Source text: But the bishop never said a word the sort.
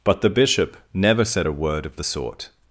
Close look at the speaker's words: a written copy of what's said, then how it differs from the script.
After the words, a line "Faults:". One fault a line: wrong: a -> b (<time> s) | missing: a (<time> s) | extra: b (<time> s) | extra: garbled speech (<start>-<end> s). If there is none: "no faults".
But the bishop never said a word of the sort.
Faults:
extra: of (1.9 s)